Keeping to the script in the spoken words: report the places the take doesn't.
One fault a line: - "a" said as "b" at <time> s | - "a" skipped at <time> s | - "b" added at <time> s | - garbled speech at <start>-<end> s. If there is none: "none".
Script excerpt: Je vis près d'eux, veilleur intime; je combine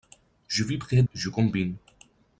- "d'eux veilleur intime" skipped at 1.0 s